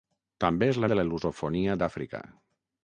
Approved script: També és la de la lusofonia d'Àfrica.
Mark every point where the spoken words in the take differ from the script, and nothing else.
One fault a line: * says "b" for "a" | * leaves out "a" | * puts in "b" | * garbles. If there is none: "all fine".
all fine